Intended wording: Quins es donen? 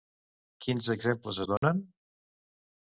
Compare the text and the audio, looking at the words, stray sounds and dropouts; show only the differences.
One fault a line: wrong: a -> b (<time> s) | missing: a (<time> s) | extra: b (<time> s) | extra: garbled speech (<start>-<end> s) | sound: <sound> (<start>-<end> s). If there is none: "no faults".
extra: exemples (0.9 s)
sound: dropout (1.6-1.6 s)